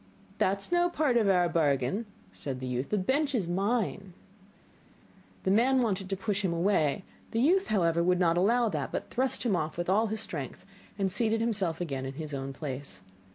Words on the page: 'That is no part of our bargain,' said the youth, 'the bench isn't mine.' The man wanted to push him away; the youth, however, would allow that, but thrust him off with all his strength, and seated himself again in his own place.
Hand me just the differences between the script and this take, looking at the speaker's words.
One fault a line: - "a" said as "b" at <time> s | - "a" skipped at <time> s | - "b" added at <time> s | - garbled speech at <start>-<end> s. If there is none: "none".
- "isn't" said as "is" at 3.4 s
- "not" added at 8.2 s